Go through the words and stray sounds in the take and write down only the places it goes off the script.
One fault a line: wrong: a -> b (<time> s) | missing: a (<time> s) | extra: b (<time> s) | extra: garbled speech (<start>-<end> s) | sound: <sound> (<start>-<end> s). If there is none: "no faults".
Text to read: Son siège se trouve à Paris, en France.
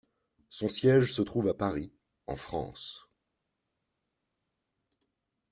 no faults